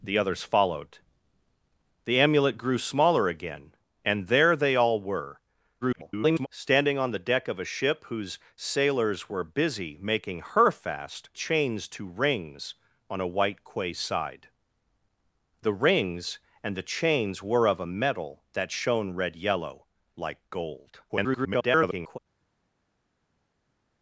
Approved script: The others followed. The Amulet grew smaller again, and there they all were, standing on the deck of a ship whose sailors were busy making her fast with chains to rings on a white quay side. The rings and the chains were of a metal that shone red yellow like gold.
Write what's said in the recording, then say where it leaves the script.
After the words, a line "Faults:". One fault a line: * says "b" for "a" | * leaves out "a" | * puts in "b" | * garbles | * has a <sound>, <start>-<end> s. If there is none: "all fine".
The others followed. The Amulet grew smaller again, and there they all were, [garbled] standing on the deck of a ship whose sailors were busy making her fast chains to rings on a white quay side. The rings and the chains were of a metal that shone red yellow like gold. [garbled]
Faults:
* garbles
* leaves out "with"
* garbles